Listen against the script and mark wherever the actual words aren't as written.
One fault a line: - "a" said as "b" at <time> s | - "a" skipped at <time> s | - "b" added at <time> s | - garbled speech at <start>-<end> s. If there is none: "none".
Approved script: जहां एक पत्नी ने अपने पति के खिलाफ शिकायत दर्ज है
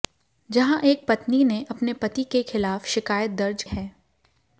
none